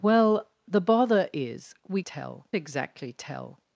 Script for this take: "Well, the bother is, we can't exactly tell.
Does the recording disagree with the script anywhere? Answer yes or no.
yes